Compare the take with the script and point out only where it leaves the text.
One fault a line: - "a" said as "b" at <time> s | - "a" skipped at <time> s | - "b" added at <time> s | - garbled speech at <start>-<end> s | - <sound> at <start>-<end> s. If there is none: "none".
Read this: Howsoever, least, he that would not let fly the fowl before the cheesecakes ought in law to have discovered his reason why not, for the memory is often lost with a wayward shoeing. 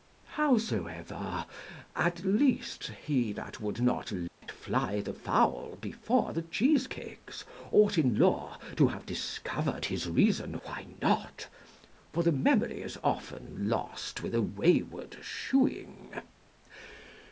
- "at" added at 1.9 s
- dropout at 4.3-4.4 s